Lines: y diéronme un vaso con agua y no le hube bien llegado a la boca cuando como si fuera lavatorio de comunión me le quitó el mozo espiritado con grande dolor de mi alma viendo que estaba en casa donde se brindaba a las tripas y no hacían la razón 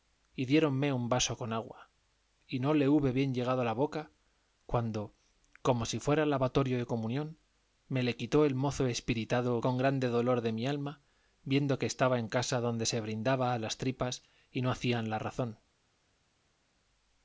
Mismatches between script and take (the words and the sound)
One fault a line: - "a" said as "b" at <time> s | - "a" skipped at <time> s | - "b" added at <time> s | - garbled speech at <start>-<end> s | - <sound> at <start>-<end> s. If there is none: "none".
none